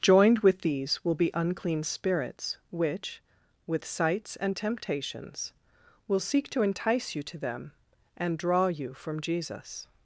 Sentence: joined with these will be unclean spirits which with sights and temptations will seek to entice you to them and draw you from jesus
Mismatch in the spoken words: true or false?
false